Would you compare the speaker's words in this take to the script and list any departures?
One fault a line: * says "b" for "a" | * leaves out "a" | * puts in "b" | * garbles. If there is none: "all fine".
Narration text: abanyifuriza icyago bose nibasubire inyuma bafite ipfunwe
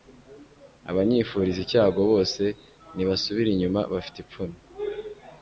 all fine